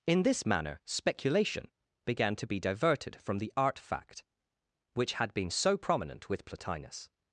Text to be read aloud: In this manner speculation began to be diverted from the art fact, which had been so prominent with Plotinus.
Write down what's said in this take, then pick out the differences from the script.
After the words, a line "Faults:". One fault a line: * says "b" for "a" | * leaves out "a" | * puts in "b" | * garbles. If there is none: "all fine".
In this manner speculation began to be diverted from the art fact, which had been so prominent with Plotinus.
Faults:
all fine